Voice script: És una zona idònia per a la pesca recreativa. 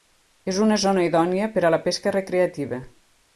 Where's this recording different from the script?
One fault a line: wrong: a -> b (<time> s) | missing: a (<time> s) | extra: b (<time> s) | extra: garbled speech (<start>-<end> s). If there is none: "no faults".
no faults